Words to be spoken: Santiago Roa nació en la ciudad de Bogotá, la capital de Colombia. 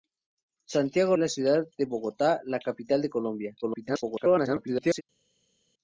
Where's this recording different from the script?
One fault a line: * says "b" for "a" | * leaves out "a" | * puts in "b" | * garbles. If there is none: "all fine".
* leaves out "Roa nació"
* garbles